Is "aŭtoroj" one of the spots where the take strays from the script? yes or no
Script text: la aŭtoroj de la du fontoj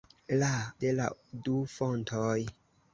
yes